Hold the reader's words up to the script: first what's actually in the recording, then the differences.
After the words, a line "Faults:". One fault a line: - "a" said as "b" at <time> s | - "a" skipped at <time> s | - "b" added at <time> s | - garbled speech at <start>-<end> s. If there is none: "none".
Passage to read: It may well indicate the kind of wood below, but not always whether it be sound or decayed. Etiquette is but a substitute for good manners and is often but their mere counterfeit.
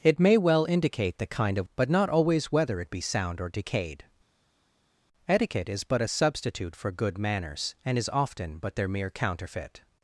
It may well indicate the kind of but not always whether it be sound or decayed. Etiquette is but a substitute for good manners and is often but their mere counterfeit.
Faults:
- "wood below" skipped at 1.7 s